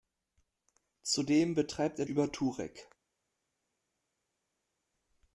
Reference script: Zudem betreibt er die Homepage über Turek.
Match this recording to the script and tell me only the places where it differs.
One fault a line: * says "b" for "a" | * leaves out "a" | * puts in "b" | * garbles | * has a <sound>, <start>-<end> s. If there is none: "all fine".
* leaves out "die Homepage"